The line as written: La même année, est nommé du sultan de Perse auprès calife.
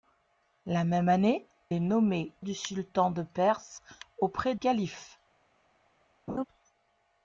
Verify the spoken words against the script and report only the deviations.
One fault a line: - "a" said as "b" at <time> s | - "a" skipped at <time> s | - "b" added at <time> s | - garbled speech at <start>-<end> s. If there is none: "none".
none